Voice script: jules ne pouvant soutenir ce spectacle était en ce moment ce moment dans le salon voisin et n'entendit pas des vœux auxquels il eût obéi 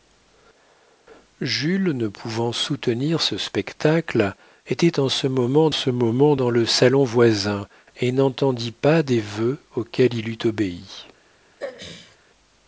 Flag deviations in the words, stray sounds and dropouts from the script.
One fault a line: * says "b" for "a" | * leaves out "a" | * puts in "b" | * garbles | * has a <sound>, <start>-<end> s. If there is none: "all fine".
* has a throat clearing, 11.6-12.2 s